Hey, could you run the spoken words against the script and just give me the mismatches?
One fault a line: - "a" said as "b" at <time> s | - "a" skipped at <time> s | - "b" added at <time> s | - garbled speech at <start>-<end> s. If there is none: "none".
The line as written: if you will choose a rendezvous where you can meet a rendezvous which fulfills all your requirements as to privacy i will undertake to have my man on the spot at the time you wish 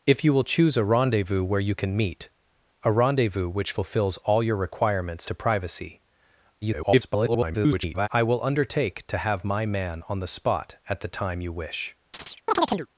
- "as" skipped at 5.3 s
- garbled speech at 6.6-8.1 s